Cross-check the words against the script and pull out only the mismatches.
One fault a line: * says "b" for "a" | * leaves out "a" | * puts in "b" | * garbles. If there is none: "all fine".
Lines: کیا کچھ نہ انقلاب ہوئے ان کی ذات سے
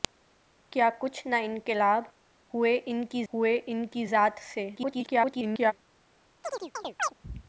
* puts in "ہوئے ان کی"
* garbles